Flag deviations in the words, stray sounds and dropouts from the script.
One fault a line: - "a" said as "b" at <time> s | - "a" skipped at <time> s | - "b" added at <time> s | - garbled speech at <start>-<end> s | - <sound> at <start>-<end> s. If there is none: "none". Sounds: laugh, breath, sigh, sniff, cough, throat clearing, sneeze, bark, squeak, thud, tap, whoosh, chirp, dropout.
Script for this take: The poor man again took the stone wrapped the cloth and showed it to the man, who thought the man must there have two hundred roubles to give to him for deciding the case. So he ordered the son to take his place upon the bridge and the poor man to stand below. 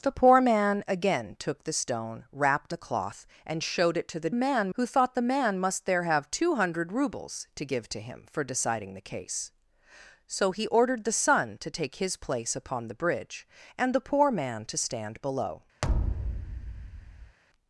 - thud at 15.8-17.4 s